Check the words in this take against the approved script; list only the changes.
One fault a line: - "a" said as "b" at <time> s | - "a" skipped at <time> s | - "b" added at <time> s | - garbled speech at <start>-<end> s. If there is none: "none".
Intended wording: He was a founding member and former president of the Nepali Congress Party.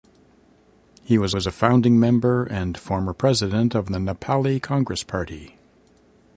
- "was" added at 1.3 s